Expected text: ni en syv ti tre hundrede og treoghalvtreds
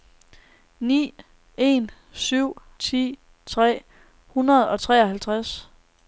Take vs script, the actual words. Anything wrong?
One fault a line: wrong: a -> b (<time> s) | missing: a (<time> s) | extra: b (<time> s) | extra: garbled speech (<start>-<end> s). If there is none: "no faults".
no faults